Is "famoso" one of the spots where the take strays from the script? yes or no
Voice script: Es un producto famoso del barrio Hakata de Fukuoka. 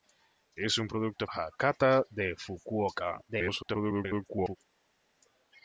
yes